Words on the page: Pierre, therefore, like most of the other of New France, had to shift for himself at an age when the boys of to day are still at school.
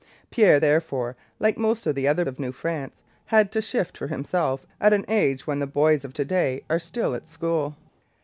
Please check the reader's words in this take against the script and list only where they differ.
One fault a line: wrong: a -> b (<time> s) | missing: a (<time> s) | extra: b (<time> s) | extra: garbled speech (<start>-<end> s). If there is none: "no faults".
no faults